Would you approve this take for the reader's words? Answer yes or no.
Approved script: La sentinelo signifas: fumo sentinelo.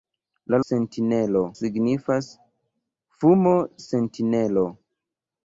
yes